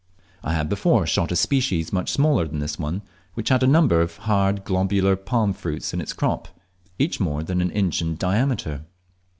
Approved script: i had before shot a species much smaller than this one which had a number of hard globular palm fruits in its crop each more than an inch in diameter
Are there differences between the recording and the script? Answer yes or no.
no